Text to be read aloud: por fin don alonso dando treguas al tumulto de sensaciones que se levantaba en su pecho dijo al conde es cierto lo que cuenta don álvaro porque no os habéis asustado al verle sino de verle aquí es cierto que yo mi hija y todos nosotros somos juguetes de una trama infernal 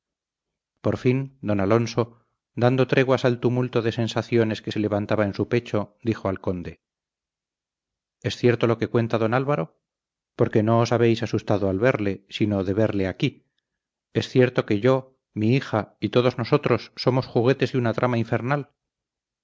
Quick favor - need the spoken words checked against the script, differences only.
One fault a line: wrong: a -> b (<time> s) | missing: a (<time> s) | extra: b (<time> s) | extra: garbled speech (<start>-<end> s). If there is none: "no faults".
no faults